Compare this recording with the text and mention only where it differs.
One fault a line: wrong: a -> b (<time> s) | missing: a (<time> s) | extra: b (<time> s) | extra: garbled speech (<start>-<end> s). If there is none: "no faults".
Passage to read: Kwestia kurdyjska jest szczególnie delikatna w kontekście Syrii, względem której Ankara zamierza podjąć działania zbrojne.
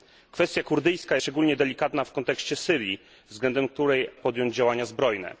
missing: jest (1.2 s)
missing: Ankara zamierza (4.1 s)